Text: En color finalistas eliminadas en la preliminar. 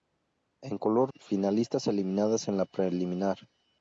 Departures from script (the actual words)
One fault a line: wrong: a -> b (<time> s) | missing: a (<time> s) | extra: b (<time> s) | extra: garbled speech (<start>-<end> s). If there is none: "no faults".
no faults